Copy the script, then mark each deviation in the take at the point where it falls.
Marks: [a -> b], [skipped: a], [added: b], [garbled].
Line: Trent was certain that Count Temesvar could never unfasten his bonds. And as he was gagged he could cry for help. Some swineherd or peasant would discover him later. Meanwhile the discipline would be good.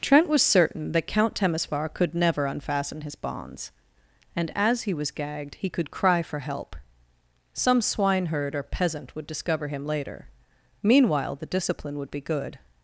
Trent was certain that Count Temesvar could never unfasten his bonds. And as he was gagged he could cry for help. Some swineherd or peasant would discover him later. Meanwhile the discipline would be good.